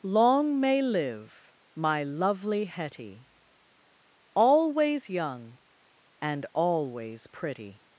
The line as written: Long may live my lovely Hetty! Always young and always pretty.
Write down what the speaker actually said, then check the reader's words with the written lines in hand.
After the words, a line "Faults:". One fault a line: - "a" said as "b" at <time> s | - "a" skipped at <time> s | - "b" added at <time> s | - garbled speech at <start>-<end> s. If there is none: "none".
Long may live my lovely Hetty! Always young and always pretty.
Faults:
none